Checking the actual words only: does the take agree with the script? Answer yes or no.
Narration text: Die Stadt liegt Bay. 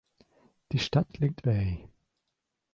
yes